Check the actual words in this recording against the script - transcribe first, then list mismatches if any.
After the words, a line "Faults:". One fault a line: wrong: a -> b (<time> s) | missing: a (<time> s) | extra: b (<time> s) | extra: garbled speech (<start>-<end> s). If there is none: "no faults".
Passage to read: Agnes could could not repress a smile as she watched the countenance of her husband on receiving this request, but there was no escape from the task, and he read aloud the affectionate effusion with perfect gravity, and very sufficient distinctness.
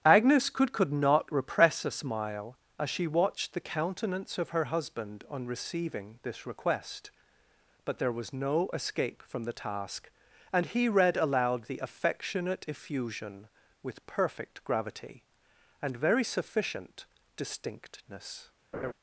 Agnes could could not repress a smile as she watched the countenance of her husband on receiving this request, but there was no escape from the task, and he read aloud the affectionate effusion with perfect gravity, and very sufficient distinctness.
Faults:
no faults